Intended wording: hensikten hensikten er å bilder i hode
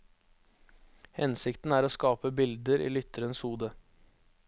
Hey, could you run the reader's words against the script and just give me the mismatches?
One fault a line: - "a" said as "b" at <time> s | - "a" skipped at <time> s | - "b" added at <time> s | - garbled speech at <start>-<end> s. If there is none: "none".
- "hensikten" skipped at 1.8 s
- "skape" added at 1.9 s
- "lytterens" added at 2.9 s